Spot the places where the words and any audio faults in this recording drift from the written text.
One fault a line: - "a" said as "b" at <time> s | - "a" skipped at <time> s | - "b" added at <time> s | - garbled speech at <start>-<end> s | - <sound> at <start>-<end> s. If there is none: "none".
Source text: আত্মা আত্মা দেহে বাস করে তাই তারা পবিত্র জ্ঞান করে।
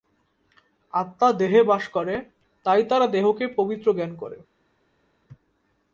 - "আত্মা" skipped at 1.3 s
- "দেহকে" added at 3.1 s